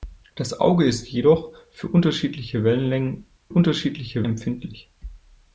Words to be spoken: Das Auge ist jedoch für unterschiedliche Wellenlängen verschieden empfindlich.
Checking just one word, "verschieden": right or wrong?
wrong